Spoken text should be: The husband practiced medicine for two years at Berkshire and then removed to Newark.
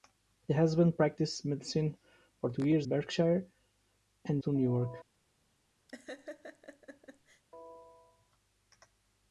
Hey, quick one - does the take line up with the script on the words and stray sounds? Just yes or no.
no